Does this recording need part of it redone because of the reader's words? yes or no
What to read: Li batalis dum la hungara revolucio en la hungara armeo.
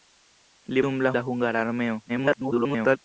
yes